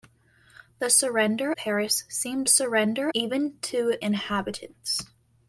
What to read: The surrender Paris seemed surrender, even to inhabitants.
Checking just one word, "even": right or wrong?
right